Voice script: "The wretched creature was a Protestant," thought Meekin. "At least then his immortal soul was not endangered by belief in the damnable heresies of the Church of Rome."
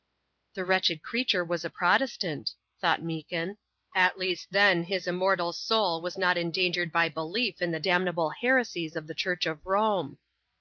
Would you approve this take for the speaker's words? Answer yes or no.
yes